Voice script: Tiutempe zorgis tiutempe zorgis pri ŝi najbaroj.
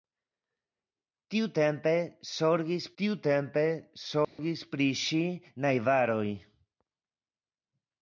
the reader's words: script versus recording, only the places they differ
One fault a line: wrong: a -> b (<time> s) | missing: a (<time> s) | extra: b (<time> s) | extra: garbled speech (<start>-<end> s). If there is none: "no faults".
no faults